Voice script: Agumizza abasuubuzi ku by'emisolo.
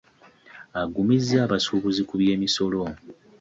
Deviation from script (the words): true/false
false